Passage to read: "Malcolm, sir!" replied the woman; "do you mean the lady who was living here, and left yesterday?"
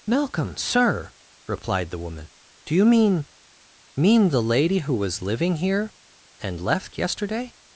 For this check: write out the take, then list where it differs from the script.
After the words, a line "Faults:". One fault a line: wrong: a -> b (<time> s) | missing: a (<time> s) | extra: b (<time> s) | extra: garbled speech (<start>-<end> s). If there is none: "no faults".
"Malcolm, sir!" replied the woman; "do you mean mean the lady who was living here, and left yesterday?"
Faults:
extra: mean (4.0 s)